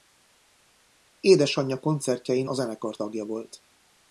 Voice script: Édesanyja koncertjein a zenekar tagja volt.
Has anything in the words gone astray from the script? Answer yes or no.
no